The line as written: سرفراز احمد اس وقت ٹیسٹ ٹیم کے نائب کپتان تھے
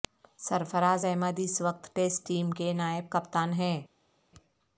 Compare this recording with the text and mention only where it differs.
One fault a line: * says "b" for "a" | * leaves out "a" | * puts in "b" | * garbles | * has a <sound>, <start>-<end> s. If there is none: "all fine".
* says "ہیں" for "تھے"